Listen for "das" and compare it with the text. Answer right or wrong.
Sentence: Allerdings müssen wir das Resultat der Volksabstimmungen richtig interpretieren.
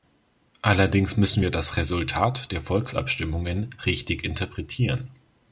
right